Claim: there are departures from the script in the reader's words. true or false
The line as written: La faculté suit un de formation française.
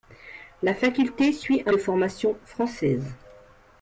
false